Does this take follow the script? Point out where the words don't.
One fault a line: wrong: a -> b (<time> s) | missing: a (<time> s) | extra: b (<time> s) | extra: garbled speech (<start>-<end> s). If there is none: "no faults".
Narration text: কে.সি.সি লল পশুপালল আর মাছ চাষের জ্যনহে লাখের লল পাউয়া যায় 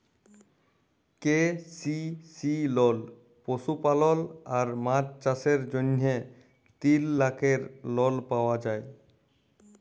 extra: তিল (6.8 s)